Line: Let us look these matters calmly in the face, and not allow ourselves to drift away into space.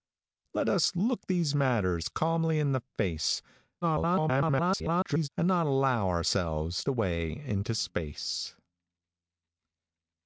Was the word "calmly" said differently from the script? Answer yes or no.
no